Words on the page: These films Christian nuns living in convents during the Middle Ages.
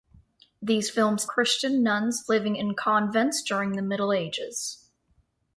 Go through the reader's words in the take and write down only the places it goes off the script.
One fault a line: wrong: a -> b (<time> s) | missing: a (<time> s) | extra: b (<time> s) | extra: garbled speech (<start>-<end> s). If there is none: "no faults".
no faults